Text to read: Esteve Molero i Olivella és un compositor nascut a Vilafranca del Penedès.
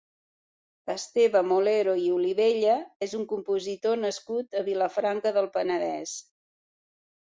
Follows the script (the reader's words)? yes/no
yes